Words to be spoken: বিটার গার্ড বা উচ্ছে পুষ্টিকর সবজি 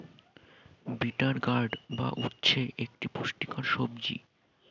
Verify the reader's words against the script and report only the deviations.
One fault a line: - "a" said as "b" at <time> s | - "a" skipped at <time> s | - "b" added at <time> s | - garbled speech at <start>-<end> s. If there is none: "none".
- "একটি" added at 2.8 s